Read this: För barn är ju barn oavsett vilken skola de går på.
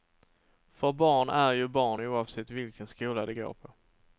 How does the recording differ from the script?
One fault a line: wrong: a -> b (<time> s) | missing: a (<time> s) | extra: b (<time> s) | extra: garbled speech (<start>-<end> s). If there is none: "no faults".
no faults